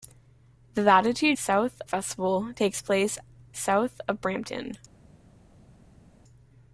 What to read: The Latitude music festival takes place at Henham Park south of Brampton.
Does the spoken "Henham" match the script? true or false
false